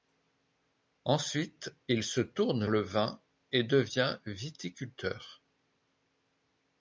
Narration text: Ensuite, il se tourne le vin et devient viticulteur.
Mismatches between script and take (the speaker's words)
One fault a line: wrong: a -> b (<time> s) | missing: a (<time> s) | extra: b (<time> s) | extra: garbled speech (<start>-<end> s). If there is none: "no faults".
no faults